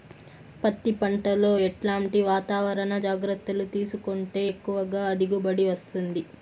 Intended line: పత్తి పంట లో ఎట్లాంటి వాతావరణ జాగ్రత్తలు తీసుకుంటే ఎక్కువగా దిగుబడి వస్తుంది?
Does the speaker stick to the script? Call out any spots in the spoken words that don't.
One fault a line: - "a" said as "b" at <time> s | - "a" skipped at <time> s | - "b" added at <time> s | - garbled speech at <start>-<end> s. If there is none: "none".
none